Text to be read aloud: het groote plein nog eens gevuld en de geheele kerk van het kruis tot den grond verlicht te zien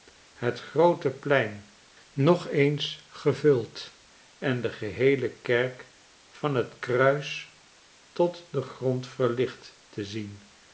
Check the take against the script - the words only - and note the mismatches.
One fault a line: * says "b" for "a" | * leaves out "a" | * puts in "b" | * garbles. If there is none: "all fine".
all fine